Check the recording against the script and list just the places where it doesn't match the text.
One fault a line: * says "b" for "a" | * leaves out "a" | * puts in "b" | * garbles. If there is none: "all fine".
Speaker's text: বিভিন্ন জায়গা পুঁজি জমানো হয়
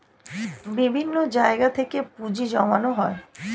* puts in "থেকে"